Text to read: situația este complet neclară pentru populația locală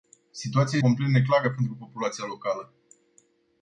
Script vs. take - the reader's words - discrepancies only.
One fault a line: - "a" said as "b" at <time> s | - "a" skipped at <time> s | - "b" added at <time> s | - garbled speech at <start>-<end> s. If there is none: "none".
- "este" skipped at 0.8 s